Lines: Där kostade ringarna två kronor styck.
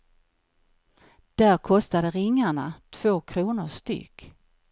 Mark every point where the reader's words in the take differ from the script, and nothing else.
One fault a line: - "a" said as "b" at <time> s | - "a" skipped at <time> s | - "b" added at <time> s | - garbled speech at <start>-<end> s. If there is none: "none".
none